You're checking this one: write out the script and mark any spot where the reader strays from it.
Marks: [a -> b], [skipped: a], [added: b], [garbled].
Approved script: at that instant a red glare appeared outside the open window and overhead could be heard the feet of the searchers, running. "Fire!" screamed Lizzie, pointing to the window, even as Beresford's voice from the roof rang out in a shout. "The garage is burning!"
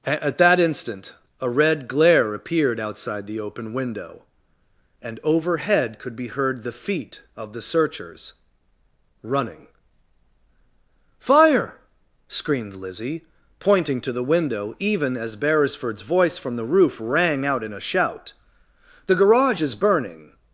at that instant a red glare appeared outside the open window and overhead could be heard the feet of the searchers, running. "Fire!" screamed Lizzie, pointing to the window, even as Beresford's voice from the roof rang out in a shout. "The garage is burning!"